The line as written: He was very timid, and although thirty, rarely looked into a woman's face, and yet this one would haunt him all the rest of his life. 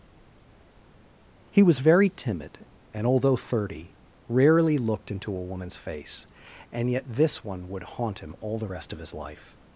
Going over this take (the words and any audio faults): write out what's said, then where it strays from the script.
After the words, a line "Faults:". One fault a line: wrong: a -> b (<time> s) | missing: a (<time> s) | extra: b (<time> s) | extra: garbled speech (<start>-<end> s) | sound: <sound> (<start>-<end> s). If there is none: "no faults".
He was very timid, and although thirty, rarely looked into a woman's face, and yet this one would haunt him all the rest of his life.
Faults:
no faults